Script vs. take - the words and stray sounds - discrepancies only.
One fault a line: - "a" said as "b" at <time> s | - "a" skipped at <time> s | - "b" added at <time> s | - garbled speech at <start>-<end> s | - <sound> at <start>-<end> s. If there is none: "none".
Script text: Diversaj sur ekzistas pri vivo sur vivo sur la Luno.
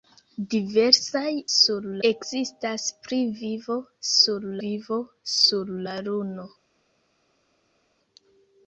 none